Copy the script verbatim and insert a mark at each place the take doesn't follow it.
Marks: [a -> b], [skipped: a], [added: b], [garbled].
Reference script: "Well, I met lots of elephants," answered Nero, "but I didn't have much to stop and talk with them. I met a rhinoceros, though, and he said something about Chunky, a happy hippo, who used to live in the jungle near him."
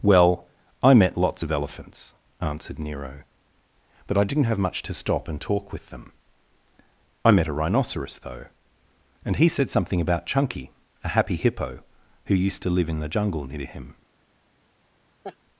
"Well, I met lots of elephants," answered Nero, "but I didn't have much to stop and talk with them. I met a rhinoceros, though, and he said something about Chunky, a happy hippo, who used to live in the jungle near him."